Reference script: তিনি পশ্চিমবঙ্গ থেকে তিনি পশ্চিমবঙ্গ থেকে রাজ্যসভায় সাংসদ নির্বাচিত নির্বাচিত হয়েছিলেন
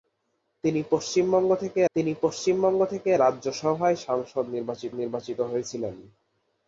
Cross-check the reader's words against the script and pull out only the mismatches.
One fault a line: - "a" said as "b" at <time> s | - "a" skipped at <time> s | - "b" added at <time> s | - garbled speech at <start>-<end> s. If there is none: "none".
none